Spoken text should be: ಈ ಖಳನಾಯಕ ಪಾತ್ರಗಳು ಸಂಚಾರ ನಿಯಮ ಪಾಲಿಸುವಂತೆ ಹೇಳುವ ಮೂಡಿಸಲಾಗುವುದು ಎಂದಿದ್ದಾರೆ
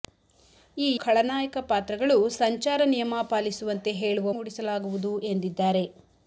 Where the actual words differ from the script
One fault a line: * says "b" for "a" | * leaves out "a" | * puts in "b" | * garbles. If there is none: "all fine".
all fine